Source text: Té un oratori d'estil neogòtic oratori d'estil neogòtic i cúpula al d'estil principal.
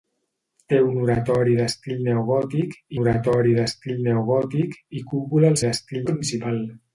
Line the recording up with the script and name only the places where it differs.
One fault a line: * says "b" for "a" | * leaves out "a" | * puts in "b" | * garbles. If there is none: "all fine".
all fine